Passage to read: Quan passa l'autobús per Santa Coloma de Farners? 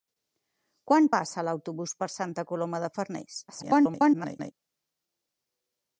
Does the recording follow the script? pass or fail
fail